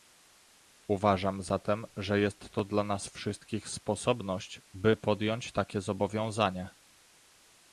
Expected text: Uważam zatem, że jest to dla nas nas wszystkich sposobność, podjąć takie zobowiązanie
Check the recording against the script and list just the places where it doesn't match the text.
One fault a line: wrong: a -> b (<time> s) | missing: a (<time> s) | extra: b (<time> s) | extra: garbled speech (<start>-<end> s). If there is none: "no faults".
missing: nas (3.1 s)
extra: by (4.7 s)